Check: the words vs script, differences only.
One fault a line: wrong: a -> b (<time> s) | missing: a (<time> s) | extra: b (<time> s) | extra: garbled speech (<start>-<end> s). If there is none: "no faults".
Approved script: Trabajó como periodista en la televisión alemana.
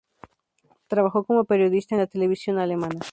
no faults